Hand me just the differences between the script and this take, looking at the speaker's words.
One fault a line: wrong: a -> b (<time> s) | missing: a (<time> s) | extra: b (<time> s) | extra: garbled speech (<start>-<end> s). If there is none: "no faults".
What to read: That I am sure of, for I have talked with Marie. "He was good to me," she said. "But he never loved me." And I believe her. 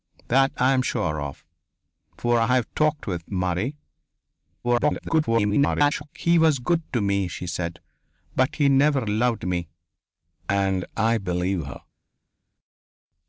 extra: garbled speech (4.6-6.1 s)